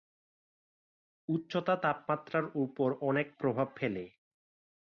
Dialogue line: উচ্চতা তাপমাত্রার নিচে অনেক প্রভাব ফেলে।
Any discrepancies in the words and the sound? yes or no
yes